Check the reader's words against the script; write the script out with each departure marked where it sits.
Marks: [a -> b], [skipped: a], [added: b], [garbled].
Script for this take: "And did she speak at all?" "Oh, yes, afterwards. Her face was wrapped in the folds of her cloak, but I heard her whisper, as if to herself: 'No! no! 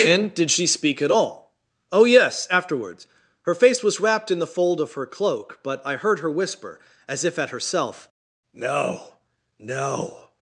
"And did she speak at all?" "Oh, yes, afterwards. Her face was wrapped in the [folds -> fold] of her cloak, but I heard her whisper, as if [to -> at] herself: 'No! no!